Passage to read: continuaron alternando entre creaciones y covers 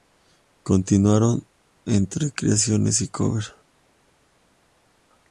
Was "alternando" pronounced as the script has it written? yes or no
no